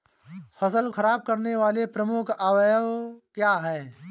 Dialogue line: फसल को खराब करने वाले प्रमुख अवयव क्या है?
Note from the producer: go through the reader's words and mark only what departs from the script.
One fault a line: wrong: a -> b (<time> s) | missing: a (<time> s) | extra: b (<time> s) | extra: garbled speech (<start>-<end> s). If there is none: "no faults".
missing: को (0.9 s)